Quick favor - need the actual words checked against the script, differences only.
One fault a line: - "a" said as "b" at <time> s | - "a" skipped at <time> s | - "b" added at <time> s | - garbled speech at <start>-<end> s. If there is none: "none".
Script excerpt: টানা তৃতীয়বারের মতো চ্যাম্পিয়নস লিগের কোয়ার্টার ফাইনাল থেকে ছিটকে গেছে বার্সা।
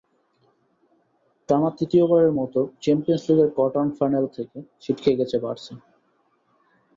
none